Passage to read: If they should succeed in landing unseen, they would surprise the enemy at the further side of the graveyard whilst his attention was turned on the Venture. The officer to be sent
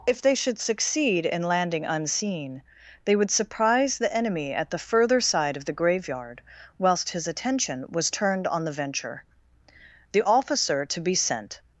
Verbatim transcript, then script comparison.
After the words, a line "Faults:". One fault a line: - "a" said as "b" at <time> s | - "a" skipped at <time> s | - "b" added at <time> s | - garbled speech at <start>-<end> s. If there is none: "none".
If they should succeed in landing unseen, they would surprise the enemy at the further side of the graveyard whilst his attention was turned on the Venture. The officer to be sent
Faults:
none